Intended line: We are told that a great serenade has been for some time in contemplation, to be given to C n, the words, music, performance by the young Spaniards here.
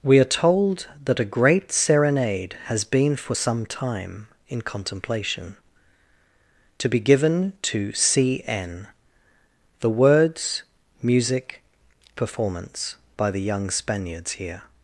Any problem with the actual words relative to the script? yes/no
no